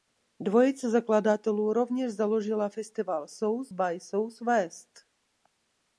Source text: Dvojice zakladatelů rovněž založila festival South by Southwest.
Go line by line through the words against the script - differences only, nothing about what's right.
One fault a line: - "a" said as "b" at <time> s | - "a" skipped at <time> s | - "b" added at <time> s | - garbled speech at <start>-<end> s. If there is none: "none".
none